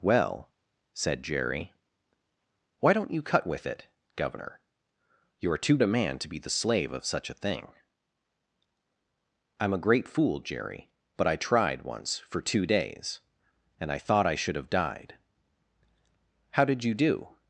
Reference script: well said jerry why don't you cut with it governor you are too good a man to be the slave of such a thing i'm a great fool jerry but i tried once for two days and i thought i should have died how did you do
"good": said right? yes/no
no